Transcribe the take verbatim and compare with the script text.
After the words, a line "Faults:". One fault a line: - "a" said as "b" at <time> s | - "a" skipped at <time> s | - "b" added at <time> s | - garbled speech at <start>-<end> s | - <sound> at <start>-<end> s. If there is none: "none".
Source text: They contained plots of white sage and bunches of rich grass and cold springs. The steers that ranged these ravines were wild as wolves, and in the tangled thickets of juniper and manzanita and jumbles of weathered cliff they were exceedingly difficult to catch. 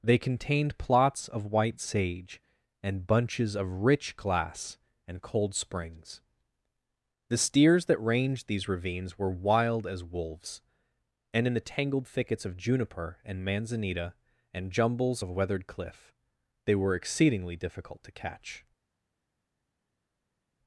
They contained plots of white sage and bunches of rich glass and cold springs. The steers that ranged these ravines were wild as wolves, and in the tangled thickets of juniper and manzanita and jumbles of weathered cliff they were exceedingly difficult to catch.
Faults:
- "grass" said as "glass" at 4.2 s